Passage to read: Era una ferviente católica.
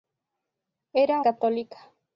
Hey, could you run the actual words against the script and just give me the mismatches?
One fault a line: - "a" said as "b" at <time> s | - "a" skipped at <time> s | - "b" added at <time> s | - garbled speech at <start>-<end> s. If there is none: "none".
- "una ferviente" skipped at 1.2 s